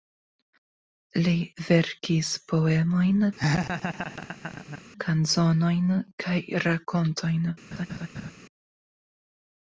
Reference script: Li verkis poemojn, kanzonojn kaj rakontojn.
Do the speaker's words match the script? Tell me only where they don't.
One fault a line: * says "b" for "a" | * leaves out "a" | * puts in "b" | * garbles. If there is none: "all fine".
all fine